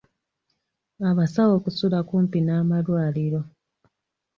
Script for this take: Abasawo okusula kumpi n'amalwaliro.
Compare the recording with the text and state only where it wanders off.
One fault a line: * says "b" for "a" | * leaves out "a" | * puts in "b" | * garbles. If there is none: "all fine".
all fine